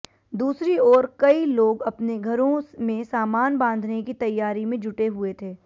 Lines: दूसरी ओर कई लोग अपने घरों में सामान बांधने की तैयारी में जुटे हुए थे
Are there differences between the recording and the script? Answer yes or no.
no